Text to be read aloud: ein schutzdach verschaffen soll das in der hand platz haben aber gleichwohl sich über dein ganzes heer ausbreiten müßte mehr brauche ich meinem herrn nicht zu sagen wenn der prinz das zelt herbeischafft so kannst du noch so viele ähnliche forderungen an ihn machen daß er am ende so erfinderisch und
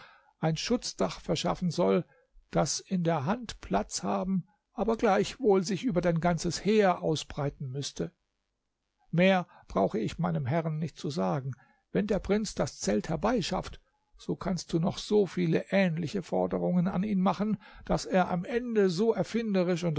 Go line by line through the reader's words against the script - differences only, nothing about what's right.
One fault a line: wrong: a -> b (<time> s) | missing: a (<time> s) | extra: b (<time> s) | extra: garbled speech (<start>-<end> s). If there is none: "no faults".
no faults